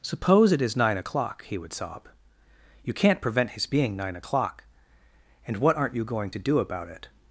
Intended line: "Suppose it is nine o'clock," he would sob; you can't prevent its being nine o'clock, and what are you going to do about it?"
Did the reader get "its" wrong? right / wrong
wrong